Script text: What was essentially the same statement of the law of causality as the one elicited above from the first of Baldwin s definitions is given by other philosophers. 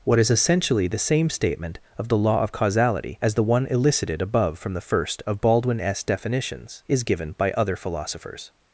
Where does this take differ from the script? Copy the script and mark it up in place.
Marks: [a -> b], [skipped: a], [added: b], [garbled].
What [was -> is] essentially the same statement of the law of causality as the one elicited above from the first of Baldwin s definitions is given by other philosophers.